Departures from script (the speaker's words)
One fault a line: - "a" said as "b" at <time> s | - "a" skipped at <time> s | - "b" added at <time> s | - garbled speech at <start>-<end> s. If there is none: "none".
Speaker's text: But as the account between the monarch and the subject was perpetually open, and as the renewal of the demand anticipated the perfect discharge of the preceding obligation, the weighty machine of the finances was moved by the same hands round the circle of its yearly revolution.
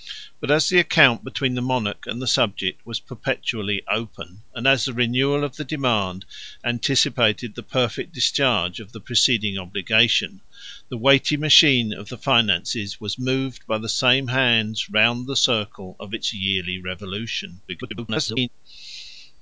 - garbled speech at 17.7-18.5 s